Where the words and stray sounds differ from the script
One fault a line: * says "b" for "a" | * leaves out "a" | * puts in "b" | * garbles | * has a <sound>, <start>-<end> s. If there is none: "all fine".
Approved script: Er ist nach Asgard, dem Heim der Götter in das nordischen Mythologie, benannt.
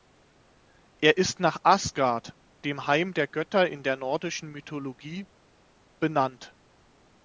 * says "der" for "das"